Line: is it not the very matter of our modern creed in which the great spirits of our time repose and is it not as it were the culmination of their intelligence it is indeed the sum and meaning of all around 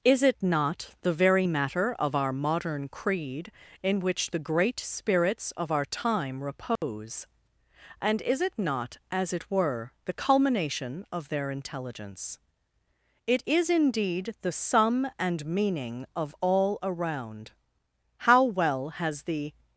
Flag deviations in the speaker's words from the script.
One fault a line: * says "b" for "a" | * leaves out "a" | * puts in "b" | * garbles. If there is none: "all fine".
* puts in "how well has the"